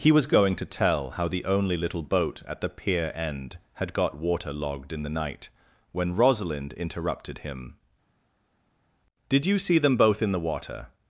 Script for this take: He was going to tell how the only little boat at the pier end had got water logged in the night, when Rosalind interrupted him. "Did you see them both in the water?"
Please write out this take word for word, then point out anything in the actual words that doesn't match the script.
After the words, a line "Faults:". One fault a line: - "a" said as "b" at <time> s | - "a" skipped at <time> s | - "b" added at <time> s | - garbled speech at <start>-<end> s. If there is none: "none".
He was going to tell how the only little boat at the pier end had got water logged in the night, when Rosalind interrupted him. "Did you see them both in the water?"
Faults:
none